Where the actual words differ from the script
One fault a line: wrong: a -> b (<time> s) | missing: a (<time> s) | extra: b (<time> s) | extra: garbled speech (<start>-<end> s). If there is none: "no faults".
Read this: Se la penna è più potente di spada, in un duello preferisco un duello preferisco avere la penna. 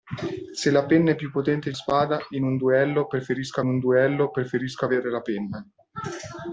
no faults